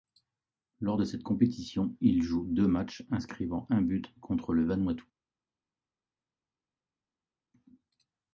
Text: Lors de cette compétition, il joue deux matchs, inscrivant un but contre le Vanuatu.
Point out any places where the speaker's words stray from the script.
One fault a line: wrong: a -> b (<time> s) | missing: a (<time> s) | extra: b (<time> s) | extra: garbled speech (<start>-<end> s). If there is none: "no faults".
no faults